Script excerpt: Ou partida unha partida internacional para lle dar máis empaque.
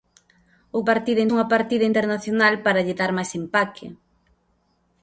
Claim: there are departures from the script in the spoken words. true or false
false